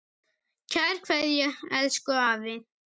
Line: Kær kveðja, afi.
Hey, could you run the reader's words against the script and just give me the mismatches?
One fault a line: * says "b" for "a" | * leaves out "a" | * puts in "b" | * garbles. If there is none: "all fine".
* puts in "elsku"